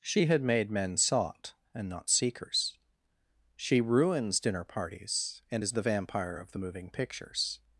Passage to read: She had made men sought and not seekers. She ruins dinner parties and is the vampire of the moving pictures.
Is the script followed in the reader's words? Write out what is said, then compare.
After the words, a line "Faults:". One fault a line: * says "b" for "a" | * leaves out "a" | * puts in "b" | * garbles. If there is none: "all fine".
She had made men sought and not seekers. She ruins dinner parties and is the vampire of the moving pictures.
Faults:
all fine